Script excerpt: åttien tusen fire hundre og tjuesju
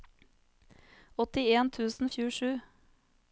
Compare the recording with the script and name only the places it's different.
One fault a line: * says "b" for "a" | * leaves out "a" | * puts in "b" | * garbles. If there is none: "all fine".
* leaves out "fire hundre"